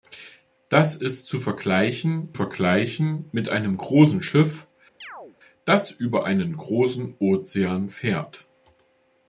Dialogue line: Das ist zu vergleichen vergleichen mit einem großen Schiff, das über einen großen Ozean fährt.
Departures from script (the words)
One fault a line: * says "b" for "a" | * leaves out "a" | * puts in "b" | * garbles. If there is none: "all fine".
all fine